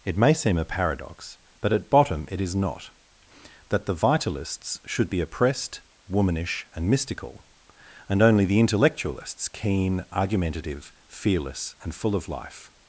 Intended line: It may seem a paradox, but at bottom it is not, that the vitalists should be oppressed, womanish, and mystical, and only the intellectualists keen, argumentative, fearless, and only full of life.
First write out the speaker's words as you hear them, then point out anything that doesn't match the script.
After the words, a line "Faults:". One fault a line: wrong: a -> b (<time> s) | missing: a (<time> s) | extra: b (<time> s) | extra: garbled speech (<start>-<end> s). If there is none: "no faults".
It may seem a paradox, but at bottom it is not, that the vitalists should be oppressed, womanish, and mystical, and only the intellectualists keen, argumentative, fearless, and full of life.
Faults:
missing: only (11.9 s)